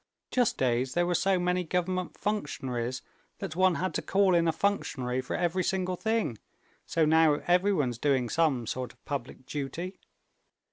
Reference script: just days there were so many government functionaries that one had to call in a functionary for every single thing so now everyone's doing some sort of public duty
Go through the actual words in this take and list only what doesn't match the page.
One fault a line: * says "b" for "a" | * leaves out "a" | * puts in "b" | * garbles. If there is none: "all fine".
all fine